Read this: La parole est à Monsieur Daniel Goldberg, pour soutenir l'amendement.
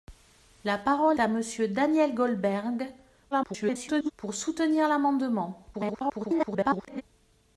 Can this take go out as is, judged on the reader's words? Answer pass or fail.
fail